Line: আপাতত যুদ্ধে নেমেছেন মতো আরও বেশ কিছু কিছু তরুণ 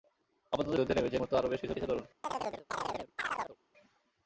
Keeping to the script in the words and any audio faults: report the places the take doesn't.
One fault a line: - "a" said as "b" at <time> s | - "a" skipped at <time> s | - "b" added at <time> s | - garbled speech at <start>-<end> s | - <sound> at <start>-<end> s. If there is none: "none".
- chirp at 2.2-3.6 s